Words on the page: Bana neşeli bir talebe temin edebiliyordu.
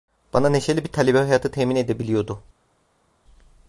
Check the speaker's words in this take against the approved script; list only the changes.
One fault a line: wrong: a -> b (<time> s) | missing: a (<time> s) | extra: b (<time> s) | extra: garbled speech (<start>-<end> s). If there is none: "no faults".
extra: hayatı (1.2 s)